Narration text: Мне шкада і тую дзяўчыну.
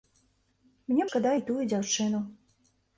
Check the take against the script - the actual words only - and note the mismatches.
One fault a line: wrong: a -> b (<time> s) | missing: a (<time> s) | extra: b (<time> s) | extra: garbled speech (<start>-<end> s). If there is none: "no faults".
no faults